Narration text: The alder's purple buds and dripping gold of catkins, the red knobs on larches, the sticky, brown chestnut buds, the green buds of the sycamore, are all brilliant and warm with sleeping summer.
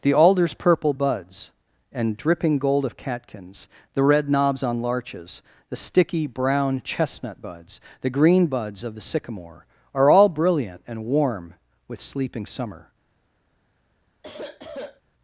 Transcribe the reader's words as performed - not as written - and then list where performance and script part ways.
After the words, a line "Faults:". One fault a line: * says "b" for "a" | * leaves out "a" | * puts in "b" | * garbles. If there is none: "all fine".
The alder's purple buds and dripping gold of catkins, the red knobs on larches, the sticky, brown chestnut buds, the green buds of the sycamore, are all brilliant and warm with sleeping summer.
Faults:
all fine